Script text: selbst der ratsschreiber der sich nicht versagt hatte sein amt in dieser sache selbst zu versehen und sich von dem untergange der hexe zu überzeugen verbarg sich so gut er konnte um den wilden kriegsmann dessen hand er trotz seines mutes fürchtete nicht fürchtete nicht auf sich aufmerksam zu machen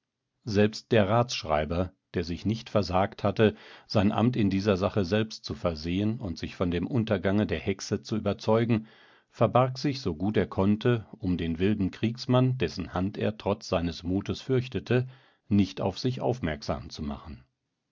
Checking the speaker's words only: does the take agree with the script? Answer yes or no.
no